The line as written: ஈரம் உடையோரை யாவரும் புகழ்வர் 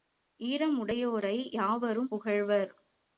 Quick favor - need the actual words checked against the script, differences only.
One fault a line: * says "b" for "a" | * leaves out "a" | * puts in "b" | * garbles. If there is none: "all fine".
all fine